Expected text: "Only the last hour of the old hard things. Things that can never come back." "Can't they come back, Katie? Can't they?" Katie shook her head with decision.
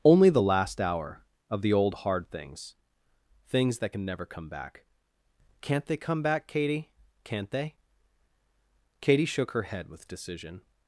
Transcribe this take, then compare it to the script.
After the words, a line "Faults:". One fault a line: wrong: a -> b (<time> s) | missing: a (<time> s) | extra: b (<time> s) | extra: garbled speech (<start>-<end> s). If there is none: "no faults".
"Only the last hour of the old hard things. Things that can never come back." "Can't they come back, Katie? Can't they?" Katie shook her head with decision.
Faults:
no faults